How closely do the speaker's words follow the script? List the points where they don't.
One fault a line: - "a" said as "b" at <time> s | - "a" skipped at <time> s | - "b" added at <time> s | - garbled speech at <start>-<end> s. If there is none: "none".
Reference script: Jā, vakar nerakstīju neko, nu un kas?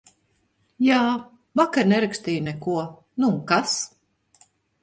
none